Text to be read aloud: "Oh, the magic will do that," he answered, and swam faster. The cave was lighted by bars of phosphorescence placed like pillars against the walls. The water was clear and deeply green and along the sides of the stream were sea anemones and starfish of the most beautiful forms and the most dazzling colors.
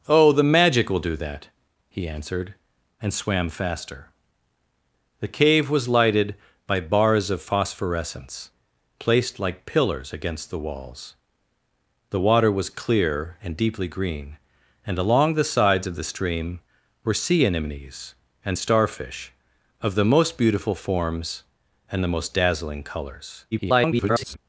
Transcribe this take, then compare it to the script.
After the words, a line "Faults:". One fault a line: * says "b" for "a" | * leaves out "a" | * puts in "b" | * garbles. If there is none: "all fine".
"Oh, the magic will do that," he answered, and swam faster. The cave was lighted by bars of phosphorescence placed like pillars against the walls. The water was clear and deeply green and along the sides of the stream were sea anemones and starfish of the most beautiful forms and the most dazzling colors. [garbled]
Faults:
* garbles